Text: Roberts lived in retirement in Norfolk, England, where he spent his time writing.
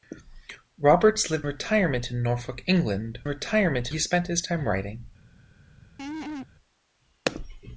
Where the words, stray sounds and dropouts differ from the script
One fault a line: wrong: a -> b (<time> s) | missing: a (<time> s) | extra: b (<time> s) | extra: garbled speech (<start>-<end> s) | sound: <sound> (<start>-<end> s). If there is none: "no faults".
missing: in (1.5 s)
wrong: where -> retirement (3.3 s)
sound: laugh (6.0-6.5 s)